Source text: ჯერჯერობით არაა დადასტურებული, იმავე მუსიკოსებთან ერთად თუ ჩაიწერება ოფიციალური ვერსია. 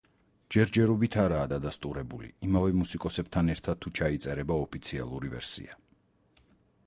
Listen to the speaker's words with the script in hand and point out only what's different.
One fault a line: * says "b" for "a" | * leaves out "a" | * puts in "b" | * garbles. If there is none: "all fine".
all fine